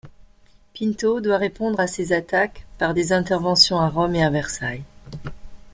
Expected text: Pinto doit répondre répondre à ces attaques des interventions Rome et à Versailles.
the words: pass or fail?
fail